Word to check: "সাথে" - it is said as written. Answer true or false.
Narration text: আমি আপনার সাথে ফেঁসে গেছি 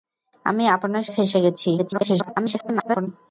false